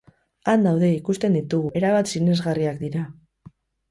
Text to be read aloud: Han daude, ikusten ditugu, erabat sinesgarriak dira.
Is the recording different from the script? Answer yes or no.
no